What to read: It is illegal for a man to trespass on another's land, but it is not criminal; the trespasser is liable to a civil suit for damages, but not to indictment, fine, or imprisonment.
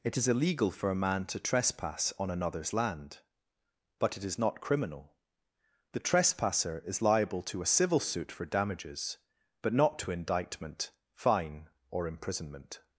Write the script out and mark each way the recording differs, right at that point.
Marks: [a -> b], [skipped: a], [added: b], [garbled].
It is illegal for a man to trespass on another's land, but it is not criminal; the trespasser is liable to a civil suit for damages, but not to indictment, fine, or imprisonment.